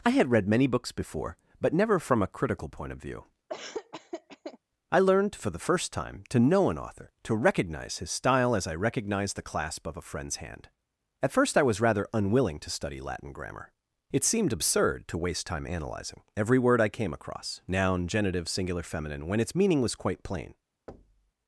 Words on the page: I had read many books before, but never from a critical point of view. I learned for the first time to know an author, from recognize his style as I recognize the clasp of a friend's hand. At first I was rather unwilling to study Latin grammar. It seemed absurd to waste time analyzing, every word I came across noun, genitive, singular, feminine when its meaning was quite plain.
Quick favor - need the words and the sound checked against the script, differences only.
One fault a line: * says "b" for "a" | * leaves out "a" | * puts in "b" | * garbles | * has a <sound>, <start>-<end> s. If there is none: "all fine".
* has a laugh, 3.5-4.6 s
* says "to" for "from"
* has a thud, 20.9-21.3 s